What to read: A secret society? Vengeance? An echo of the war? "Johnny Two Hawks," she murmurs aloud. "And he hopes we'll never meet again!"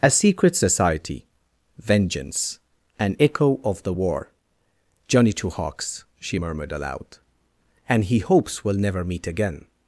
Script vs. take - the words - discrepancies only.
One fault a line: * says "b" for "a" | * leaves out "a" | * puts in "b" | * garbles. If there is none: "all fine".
* says "murmured" for "murmurs"